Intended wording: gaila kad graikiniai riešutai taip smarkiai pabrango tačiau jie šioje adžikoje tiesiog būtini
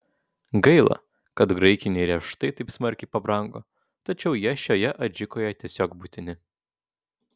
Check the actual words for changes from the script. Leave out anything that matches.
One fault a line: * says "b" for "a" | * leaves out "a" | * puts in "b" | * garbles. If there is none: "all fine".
all fine